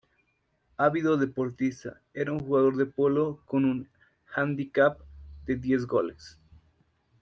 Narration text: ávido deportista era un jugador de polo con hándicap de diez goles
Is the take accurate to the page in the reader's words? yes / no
no